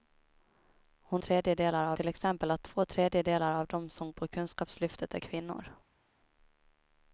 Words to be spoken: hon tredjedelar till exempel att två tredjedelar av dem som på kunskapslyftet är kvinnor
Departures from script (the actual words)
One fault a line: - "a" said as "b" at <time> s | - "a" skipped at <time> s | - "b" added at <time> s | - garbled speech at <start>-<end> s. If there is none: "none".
none